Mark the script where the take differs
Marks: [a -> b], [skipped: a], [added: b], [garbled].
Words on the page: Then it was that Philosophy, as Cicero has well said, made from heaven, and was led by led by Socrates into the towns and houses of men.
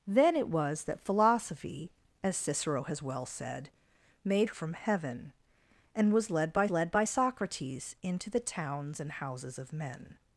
Then it was that Philosophy, as Cicero has well said, made from heaven, and was led by led by Socrates into the towns and houses of men.